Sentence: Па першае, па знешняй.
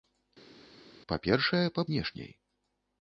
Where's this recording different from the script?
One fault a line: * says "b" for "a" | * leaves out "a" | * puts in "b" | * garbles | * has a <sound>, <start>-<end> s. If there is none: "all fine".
all fine